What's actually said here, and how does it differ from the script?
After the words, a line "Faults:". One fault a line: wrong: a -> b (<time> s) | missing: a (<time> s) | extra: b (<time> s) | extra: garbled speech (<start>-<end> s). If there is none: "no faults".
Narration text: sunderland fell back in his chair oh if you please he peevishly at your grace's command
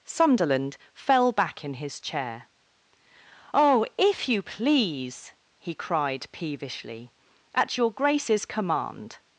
sunderland fell back in his chair oh if you please he cried peevishly at your grace's command
Faults:
extra: cried (5.7 s)